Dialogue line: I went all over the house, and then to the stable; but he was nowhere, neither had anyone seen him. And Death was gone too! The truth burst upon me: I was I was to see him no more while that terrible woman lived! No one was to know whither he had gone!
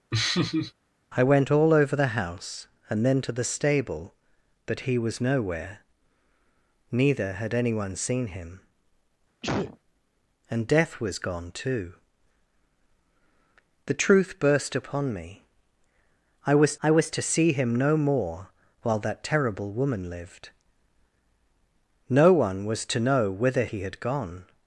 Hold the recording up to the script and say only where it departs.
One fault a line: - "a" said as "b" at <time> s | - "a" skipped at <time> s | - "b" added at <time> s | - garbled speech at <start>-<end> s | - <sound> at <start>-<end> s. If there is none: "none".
- laugh at 0.1-0.7 s
- sneeze at 9.4-9.8 s